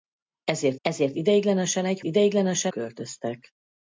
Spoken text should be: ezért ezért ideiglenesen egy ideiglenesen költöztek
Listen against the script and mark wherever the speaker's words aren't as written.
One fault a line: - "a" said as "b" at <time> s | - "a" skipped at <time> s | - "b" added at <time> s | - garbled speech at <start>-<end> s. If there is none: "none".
none